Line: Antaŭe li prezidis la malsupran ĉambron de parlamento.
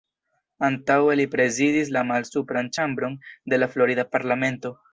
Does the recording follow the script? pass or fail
fail